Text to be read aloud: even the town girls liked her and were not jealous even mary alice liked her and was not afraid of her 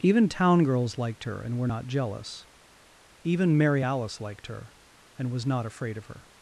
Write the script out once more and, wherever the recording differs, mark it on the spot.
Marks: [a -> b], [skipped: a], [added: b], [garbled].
even [skipped: the] town girls liked her and were not jealous even mary alice liked her and was not afraid of her